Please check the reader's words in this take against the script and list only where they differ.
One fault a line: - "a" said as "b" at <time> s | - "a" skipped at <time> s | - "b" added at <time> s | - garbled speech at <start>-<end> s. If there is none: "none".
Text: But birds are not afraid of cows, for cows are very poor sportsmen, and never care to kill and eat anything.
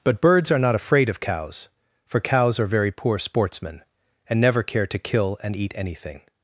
none